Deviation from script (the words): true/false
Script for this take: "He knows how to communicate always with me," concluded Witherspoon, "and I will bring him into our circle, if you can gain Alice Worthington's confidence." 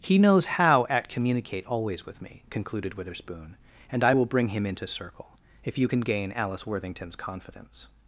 true